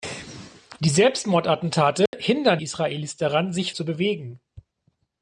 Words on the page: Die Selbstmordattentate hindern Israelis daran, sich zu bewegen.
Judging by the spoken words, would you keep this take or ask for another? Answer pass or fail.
pass